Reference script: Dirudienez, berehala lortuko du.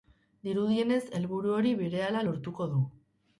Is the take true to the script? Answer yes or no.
no